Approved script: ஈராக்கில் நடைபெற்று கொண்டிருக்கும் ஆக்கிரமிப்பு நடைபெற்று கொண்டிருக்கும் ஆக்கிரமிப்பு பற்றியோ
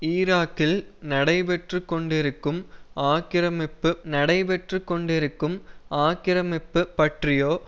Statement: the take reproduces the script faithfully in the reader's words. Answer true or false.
true